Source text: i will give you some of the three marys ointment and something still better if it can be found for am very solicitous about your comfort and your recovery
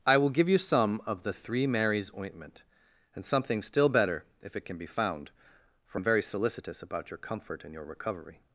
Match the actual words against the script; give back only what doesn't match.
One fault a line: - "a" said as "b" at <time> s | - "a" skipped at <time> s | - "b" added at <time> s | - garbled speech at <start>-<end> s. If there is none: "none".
none